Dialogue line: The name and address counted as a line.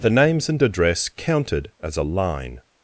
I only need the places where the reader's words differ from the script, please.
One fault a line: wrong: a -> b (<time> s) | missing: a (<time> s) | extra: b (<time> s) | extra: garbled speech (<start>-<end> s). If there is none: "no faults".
wrong: name -> names (0.1 s)